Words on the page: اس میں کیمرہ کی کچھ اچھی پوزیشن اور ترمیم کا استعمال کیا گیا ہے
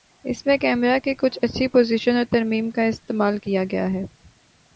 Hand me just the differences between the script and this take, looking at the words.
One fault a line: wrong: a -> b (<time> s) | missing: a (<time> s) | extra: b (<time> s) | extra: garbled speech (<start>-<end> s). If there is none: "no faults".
no faults